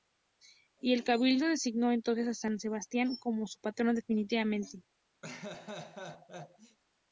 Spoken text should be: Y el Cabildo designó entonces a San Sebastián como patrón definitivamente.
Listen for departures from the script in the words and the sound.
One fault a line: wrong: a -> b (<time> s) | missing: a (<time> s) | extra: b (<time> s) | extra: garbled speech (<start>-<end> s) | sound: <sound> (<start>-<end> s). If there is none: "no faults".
extra: su (3.5 s)
sound: laugh (5.2-6.8 s)